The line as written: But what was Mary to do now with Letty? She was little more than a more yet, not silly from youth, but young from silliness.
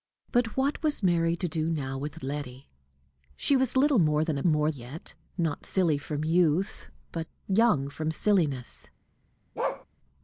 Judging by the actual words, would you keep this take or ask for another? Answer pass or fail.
pass